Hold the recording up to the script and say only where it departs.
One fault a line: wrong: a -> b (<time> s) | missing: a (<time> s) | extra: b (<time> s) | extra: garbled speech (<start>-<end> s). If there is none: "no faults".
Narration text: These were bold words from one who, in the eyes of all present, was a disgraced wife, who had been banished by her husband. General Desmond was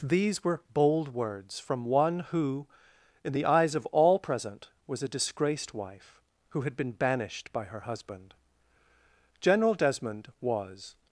no faults